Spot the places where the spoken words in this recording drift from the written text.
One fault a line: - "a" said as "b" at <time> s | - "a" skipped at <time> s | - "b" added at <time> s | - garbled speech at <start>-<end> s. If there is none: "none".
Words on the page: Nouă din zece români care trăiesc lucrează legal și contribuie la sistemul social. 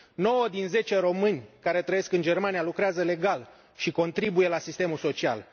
- "în Germania" added at 2.1 s